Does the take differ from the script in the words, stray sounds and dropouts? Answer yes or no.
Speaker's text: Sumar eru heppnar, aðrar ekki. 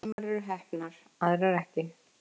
yes